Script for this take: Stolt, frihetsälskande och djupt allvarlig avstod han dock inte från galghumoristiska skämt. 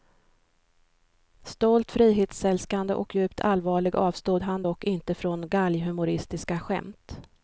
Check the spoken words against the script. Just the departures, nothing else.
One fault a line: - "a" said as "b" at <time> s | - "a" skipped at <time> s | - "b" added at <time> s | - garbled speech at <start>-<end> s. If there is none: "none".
none